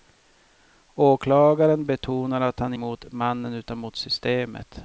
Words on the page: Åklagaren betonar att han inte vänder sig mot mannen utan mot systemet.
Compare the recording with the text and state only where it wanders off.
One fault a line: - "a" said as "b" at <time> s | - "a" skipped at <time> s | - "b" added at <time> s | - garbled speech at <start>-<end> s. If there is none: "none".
- "inte vänder sig" skipped at 2.7 s